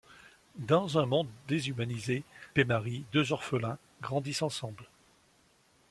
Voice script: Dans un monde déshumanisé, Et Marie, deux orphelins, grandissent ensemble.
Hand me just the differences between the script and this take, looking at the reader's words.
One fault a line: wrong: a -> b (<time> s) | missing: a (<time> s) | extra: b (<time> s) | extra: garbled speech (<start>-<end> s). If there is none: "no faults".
no faults